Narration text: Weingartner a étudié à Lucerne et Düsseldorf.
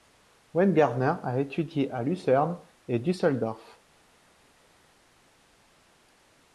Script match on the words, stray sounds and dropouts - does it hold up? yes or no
yes